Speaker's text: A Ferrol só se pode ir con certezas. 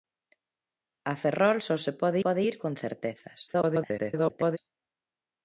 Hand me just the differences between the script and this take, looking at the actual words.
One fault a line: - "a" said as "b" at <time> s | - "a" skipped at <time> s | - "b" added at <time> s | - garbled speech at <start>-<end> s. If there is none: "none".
- "pode" added at 2.2 s
- garbled speech at 3.5-4.6 s